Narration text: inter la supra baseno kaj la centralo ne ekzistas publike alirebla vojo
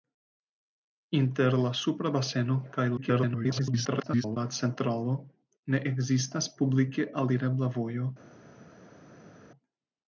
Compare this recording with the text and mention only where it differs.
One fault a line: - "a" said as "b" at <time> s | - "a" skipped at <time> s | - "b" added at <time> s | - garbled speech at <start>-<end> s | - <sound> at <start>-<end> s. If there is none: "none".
- garbled speech at 3.0-4.4 s